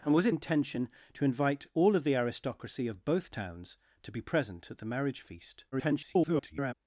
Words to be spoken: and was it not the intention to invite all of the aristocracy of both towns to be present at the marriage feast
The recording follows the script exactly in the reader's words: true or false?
false